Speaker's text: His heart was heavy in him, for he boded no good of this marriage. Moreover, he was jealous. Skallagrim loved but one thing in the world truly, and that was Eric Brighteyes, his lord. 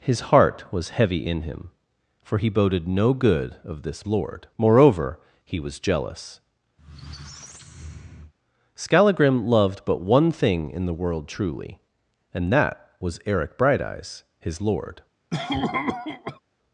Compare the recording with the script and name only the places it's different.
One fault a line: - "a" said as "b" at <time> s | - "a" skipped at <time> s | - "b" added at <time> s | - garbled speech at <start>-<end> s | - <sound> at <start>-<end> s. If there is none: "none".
- "marriage" said as "lord" at 4.1 s
- squeak at 6.8-8.3 s
- cough at 15.3-16.4 s